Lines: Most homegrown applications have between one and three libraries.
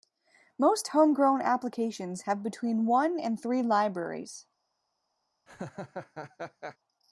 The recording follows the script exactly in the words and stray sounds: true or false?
false